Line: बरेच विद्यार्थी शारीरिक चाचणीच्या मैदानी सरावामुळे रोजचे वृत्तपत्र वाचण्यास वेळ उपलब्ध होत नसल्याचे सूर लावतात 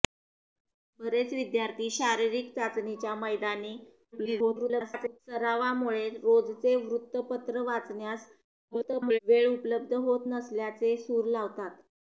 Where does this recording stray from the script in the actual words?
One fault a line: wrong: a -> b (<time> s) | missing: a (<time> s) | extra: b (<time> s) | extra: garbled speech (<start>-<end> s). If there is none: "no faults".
extra: garbled speech (4.1-5.2 s)
extra: garbled speech (8.7-9.2 s)